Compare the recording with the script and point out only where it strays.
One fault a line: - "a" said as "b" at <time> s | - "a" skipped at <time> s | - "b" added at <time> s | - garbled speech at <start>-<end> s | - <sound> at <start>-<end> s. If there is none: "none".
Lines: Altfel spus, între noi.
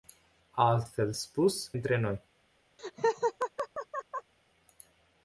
- laugh at 2.8-4.3 s